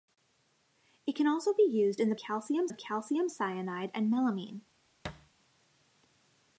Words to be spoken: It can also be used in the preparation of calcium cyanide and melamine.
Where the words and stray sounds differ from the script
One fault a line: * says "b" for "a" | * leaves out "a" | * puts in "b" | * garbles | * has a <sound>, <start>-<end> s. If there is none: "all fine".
* says "calcium" for "preparation"
* has a thud, 5.0-5.3 s